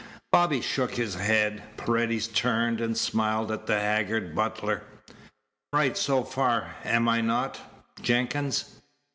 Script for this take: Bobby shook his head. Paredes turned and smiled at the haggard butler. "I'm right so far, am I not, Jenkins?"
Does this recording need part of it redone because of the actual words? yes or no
yes